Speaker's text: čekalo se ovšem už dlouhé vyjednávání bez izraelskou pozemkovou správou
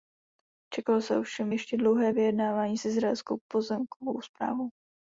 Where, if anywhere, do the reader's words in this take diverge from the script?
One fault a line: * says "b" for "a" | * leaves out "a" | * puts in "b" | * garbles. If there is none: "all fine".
* says "ještě" for "už"
* says "s" for "bez"